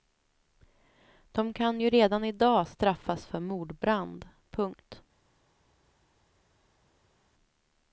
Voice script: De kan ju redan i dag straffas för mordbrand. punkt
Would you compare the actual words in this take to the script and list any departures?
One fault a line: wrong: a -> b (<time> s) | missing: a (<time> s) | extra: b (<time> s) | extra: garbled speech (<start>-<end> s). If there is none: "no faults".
no faults